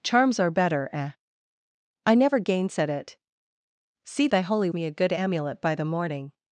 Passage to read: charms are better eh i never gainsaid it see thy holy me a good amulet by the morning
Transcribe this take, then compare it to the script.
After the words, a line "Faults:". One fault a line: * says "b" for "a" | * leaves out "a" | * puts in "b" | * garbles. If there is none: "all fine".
charms are better eh i never gainsaid it see thy holy me a good amulet by the morning
Faults:
all fine